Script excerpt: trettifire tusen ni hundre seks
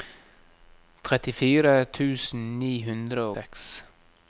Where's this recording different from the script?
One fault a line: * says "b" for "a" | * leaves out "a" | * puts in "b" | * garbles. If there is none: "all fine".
all fine